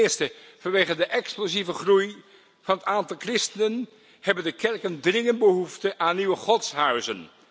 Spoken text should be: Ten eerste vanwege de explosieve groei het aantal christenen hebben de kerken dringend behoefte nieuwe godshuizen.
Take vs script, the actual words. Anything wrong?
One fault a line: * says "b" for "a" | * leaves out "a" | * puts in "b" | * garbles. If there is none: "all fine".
* puts in "van"
* puts in "aan"